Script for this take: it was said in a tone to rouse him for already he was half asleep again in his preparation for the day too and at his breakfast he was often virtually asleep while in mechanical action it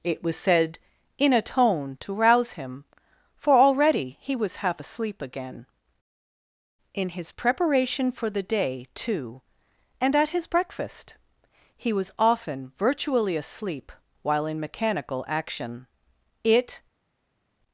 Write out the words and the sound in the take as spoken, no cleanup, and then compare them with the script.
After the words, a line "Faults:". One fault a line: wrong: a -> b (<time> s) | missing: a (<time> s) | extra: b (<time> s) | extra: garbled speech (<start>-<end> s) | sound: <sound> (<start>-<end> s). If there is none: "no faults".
it was said in a tone to rouse him for already he was half asleep again in his preparation for the day too and at his breakfast he was often virtually asleep while in mechanical action it
Faults:
no faults